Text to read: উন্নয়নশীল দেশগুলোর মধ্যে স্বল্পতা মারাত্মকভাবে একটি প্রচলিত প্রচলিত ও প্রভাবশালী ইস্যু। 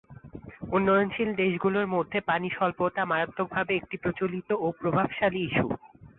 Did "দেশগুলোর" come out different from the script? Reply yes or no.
no